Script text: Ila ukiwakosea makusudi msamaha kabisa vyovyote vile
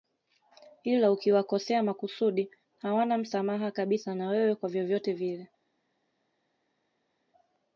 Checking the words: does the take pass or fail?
fail